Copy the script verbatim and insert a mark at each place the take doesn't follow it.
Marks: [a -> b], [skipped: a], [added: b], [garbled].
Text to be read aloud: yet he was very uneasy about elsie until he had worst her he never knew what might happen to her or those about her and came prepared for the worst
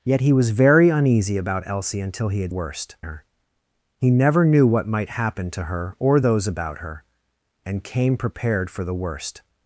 yet he was very uneasy about elsie until he had worst her he never knew what might happen to her or those about her and came prepared for the worst